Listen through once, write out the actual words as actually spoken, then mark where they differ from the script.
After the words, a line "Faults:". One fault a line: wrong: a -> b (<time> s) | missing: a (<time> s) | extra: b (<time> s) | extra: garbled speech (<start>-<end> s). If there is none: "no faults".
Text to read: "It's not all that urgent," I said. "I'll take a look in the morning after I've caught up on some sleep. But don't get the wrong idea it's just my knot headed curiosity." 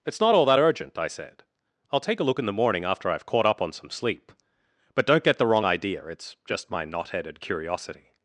"It's not all that urgent," I said. "I'll take a look in the morning after I've caught up on some sleep. But don't get the wrong idea it's just my knot headed curiosity."
Faults:
no faults